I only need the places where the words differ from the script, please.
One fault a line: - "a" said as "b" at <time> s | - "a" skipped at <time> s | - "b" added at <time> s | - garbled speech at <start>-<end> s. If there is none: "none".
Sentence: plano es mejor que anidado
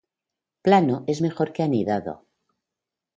none